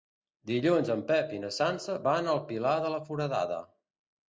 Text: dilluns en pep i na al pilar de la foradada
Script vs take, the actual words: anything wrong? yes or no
yes